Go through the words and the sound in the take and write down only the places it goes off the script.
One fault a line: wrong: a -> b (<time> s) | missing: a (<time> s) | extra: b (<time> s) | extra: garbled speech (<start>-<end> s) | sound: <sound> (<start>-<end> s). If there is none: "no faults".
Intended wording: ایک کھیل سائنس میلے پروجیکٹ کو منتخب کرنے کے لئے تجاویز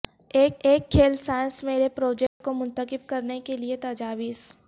extra: ایک (0.6 s)
sound: dropout (2.3-2.4 s)